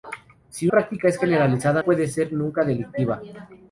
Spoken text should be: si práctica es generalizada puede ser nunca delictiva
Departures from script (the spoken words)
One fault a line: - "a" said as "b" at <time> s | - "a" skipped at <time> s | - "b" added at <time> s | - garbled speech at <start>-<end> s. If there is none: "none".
none